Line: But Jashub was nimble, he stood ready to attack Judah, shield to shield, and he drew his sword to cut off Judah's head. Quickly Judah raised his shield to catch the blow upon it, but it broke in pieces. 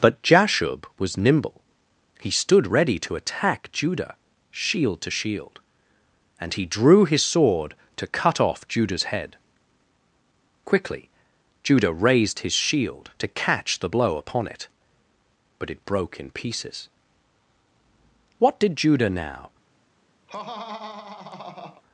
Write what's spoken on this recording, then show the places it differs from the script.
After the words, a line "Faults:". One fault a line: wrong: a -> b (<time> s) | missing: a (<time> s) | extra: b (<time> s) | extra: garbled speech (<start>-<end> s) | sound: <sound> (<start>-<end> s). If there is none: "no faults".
But Jashub was nimble, he stood ready to attack Judah, shield to shield, and he drew his sword to cut off Judah's head. Quickly Judah raised his shield to catch the blow upon it, but it broke in pieces. What did Judah now
Faults:
extra: What did Judah now (18.4 s)
sound: laugh (20.3-21.8 s)